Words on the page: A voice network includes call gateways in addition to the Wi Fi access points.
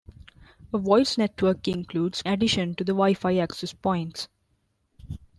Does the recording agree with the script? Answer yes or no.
no